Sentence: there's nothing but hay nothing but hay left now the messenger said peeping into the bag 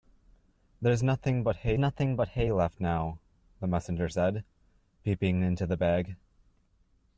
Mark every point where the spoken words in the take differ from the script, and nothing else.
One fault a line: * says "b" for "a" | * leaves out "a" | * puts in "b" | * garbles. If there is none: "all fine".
all fine